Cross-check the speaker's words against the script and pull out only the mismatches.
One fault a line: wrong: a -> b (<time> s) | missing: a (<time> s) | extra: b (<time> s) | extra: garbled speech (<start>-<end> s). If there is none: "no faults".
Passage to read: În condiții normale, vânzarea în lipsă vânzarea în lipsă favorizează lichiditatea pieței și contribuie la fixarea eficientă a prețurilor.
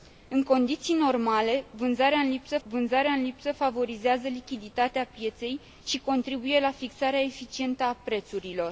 no faults